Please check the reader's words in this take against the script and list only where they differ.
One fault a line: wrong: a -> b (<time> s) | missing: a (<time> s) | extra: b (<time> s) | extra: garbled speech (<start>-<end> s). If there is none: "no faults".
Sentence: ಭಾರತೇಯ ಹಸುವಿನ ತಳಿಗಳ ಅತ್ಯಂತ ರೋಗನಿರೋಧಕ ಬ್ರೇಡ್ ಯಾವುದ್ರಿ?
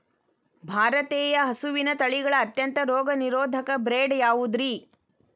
no faults